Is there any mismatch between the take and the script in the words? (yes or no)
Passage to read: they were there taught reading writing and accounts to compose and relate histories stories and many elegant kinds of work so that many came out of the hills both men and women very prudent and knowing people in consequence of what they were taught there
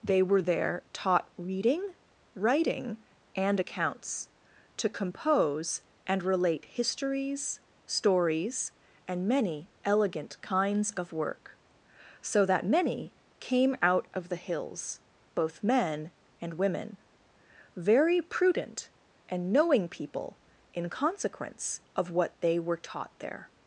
no